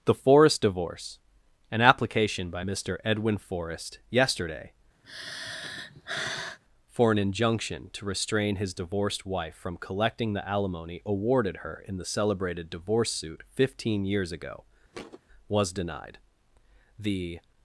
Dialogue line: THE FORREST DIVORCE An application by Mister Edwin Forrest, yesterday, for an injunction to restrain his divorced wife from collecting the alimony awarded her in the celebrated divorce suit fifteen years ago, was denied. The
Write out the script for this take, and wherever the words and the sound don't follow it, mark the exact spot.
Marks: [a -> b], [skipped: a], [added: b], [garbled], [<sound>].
THE FORREST DIVORCE An application by Mister Edwin Forrest, yesterday, [sigh] for an injunction to restrain his divorced wife from collecting the alimony awarded her in the celebrated divorce suit fifteen years ago, [thud] was denied. The